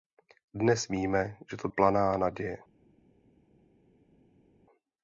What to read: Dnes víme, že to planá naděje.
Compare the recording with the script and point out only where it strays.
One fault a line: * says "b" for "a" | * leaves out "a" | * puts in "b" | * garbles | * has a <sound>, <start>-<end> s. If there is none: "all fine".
all fine